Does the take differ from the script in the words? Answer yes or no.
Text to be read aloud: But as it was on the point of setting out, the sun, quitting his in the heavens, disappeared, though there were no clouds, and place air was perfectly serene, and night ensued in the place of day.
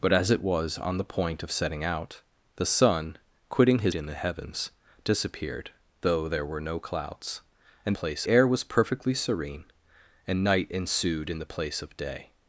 no